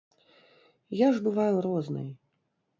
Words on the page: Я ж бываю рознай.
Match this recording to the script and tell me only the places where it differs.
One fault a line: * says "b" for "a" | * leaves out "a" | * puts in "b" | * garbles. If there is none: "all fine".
all fine